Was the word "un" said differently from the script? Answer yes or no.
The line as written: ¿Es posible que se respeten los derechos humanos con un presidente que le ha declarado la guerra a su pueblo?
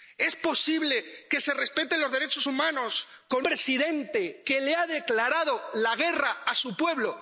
yes